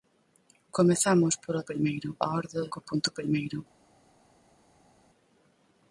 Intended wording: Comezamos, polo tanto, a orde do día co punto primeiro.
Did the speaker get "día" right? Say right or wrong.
wrong